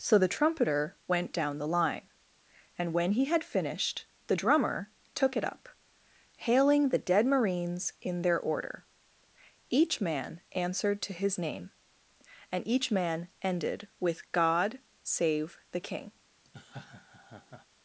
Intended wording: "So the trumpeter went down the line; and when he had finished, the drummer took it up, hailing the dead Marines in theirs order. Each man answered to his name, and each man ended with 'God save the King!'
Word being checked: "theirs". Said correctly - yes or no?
no